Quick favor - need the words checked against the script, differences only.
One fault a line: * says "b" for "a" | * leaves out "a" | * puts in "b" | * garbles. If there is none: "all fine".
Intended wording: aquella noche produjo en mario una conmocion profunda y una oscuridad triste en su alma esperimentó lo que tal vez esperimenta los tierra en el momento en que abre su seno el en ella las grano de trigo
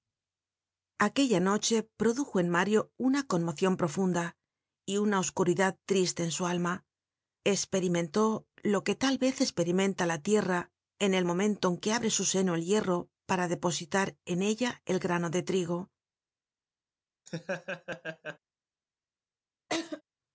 * says "la" for "los"
* puts in "hierro para depositar"
* says "el" for "las"